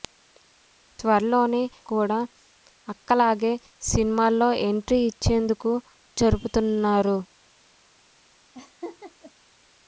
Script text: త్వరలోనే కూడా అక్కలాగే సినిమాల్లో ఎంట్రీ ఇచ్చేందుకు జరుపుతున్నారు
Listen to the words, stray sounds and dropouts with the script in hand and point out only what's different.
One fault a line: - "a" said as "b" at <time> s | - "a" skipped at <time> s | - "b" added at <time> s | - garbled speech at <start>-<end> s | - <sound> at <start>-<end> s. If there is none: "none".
- laugh at 8.5-9.3 s